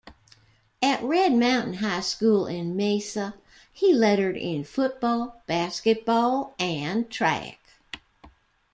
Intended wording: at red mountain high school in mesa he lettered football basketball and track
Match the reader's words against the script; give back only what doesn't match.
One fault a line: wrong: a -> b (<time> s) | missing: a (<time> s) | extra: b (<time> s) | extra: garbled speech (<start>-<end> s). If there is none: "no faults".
extra: in (4.3 s)